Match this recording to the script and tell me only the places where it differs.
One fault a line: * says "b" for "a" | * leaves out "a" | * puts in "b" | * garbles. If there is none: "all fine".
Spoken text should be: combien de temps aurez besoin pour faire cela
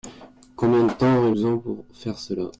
all fine